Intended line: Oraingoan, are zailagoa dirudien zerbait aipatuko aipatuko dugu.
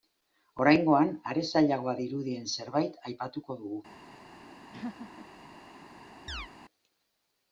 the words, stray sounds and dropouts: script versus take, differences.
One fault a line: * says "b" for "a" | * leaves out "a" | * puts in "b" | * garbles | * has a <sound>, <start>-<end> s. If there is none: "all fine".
* leaves out "aipatuko"
* has a laugh, 4.7-5.3 s
* has a chirp, 6.3-6.5 s